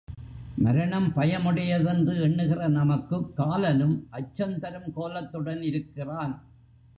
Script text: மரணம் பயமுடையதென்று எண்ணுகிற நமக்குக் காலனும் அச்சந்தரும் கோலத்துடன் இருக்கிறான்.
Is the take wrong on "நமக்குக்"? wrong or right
right